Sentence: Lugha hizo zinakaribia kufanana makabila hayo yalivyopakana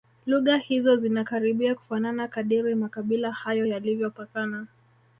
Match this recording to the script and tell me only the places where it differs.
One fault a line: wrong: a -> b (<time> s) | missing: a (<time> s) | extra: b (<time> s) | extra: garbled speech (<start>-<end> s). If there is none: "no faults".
extra: kadiri (2.3 s)